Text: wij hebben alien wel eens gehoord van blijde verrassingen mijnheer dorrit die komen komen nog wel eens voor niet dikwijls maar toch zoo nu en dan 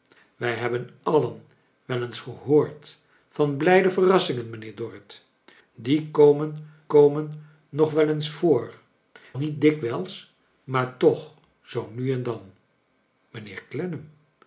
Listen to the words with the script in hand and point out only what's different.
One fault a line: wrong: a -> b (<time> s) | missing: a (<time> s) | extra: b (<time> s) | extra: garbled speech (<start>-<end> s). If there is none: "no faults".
no faults